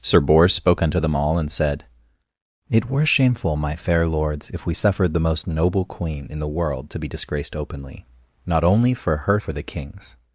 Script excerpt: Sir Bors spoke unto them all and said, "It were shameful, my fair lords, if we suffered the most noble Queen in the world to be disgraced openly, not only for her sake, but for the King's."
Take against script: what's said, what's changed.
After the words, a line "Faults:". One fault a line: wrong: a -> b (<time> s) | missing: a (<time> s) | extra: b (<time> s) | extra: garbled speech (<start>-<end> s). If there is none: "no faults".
Sir Bors spoke unto them all and said, "It were shameful, my fair lords, if we suffered the most noble Queen in the world to be disgraced openly, not only for her for the King's."
Faults:
missing: sake but (9.4 s)